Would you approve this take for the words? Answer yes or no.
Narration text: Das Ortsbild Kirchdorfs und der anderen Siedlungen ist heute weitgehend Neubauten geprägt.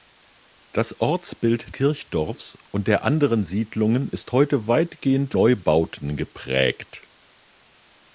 yes